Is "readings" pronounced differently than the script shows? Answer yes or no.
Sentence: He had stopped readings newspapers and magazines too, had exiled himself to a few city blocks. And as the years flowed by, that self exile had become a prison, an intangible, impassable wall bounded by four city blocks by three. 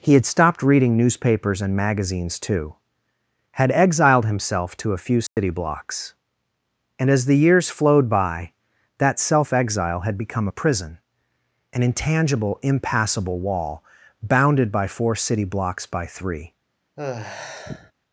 yes